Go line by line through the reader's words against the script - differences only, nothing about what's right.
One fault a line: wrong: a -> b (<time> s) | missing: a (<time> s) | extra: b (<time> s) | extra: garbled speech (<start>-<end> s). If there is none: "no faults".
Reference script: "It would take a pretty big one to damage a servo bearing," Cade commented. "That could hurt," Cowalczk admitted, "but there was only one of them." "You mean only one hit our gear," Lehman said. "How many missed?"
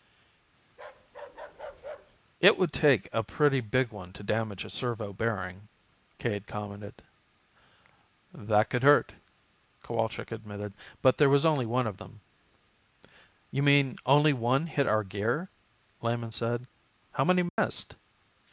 no faults